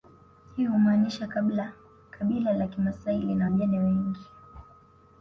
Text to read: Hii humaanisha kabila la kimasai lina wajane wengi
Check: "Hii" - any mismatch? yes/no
no